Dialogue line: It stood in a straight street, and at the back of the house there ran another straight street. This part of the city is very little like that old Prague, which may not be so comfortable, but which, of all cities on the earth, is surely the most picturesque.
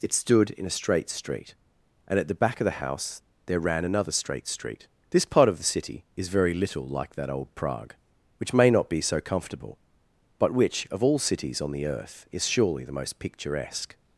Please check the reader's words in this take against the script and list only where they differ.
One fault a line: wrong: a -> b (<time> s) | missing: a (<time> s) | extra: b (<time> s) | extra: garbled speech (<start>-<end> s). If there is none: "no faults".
no faults